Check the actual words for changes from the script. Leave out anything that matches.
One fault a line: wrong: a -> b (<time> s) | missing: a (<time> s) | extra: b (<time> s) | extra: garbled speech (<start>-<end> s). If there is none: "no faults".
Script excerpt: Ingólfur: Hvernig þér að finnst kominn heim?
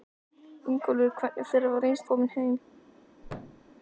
no faults